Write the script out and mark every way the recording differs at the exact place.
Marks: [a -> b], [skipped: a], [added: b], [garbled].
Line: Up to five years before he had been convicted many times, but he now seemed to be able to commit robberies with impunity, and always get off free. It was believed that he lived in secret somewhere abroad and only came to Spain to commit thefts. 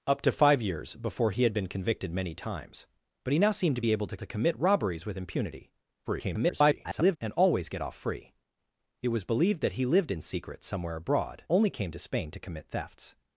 Up to five years before he had been convicted many times, but he now seemed to be able to [added: to] commit robberies with impunity, [garbled] and always get off free. It was believed that he lived in secret somewhere abroad [skipped: and] only came to Spain to commit thefts.